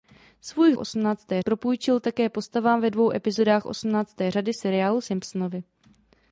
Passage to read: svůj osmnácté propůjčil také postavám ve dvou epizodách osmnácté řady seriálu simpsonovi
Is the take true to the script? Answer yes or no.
yes